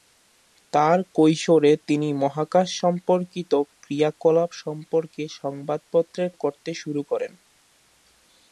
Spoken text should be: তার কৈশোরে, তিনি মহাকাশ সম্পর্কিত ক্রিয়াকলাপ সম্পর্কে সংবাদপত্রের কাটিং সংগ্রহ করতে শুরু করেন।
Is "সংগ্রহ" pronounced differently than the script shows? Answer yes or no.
yes